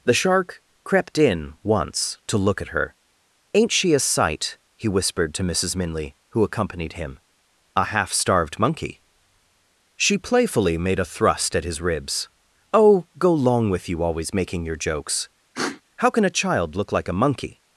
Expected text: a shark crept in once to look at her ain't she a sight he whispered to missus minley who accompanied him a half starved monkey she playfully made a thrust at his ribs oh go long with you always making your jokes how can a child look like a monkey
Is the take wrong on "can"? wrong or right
right